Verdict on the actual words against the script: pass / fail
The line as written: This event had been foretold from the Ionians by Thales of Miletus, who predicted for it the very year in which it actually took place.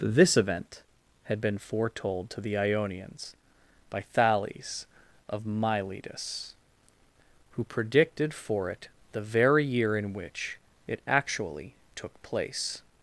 fail